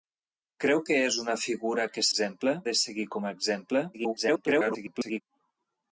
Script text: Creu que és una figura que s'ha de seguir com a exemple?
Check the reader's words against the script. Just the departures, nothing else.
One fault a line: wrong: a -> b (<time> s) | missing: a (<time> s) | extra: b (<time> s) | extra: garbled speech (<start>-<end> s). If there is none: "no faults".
wrong: s'ha -> exemple (2.1 s)
extra: garbled speech (3.9-5.2 s)